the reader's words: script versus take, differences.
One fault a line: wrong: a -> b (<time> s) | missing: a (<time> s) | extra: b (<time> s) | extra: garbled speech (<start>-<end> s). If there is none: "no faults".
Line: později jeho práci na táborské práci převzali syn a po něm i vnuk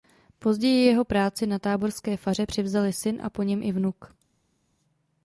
wrong: práci -> faře (2.2 s)